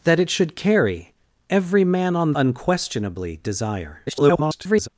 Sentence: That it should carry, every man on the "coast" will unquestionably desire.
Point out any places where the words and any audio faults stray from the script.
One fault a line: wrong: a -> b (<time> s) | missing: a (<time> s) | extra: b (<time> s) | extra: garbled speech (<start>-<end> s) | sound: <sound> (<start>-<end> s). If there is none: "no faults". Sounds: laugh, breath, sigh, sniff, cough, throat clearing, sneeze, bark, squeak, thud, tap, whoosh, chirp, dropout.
missing: the coast will (2.3 s)
extra: garbled speech (4.0-4.9 s)